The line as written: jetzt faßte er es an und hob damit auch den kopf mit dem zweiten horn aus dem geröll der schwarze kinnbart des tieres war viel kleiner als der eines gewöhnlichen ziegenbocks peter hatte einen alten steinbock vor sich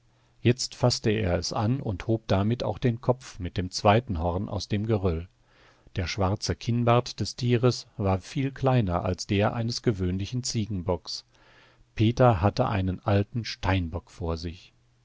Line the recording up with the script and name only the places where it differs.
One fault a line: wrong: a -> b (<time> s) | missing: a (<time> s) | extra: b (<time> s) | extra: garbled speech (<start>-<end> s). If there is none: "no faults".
no faults